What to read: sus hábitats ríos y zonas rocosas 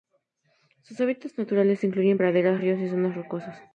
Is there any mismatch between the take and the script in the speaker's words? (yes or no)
yes